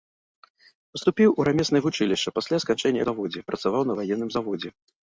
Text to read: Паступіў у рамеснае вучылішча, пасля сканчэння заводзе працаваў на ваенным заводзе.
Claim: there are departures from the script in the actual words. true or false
false